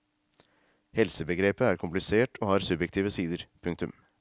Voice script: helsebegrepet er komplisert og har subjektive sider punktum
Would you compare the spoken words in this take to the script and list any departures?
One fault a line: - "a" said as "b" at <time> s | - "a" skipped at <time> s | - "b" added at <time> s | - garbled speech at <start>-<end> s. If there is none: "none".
none